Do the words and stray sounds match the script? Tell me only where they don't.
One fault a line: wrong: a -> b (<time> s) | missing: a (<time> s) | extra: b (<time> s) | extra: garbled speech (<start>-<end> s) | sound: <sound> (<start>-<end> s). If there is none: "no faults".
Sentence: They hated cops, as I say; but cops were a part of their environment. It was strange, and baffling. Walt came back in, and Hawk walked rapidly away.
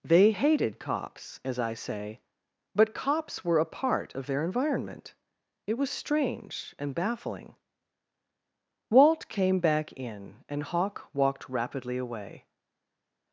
no faults